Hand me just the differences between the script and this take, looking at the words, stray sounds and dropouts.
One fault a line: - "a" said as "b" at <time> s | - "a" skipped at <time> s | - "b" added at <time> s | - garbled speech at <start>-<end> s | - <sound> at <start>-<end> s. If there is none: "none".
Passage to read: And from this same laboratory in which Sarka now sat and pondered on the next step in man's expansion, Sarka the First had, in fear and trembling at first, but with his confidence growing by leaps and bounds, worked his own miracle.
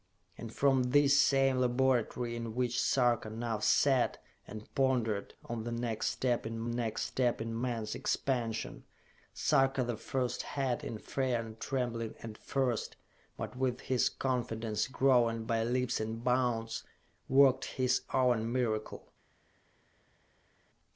- "next step in" added at 6.7 s